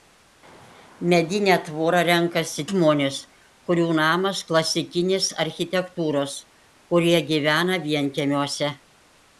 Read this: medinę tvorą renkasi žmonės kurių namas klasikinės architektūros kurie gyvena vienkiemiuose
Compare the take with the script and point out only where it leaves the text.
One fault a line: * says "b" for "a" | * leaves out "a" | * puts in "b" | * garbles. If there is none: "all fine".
all fine